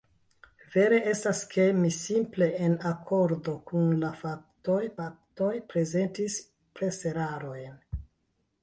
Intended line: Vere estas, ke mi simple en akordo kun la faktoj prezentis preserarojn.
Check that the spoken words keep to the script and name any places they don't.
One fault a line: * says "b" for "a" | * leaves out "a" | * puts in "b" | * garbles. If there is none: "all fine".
* puts in "faktoj"